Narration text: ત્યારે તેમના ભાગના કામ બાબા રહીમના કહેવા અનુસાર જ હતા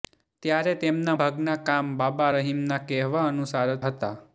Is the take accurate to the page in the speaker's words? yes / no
yes